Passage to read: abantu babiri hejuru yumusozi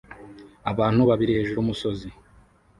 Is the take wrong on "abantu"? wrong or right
right